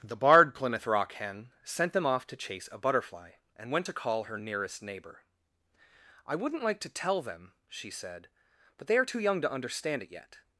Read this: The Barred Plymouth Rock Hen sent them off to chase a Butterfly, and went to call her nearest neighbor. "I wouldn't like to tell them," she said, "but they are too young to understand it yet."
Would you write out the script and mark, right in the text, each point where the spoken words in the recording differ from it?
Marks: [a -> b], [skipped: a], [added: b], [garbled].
The Barred Plymouth Rock Hen sent them off to chase a Butterfly, and went to call her nearest neighbor. "I wouldn't like to tell them," she said, "but they are too young to understand it yet."